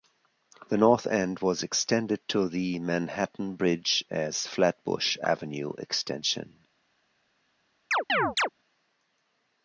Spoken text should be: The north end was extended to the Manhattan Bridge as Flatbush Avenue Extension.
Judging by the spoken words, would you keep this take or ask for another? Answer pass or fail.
pass